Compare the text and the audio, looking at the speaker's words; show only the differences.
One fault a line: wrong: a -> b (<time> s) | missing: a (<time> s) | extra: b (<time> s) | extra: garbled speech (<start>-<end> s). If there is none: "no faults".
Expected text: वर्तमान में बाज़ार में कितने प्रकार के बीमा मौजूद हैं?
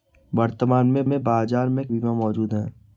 extra: में (1.0 s)
missing: कितने प्रकार के (1.8 s)